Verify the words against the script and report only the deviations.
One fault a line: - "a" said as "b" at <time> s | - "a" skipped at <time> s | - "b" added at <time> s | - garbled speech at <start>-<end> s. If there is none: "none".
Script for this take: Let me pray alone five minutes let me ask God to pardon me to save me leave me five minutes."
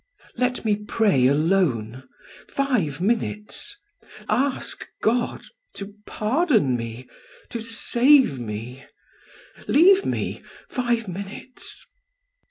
- "let me" skipped at 3.8 s